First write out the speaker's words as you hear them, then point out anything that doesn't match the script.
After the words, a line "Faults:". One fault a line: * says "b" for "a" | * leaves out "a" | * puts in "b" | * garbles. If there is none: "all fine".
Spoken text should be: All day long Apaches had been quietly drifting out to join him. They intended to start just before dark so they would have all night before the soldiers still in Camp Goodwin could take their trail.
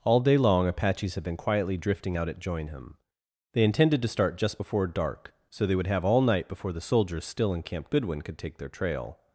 All day long Apaches had been quietly drifting out at join him. They intended to start just before dark so they would have all night before the soldiers still in Camp Goodwin could take their trail.
Faults:
* says "at" for "to"